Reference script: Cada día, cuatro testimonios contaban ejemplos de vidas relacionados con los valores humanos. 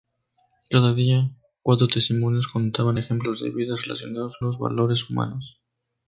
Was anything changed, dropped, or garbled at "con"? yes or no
yes